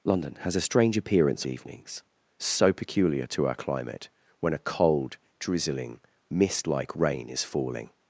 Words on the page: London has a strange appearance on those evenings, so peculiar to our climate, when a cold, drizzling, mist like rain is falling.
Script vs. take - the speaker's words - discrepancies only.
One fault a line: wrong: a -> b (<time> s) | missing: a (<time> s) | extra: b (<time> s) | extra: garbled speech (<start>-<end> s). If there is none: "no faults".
missing: on those (1.4 s)